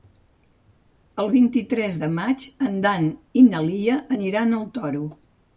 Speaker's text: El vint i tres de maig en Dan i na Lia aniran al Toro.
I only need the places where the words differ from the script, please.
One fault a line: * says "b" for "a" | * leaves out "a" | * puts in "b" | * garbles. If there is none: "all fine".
all fine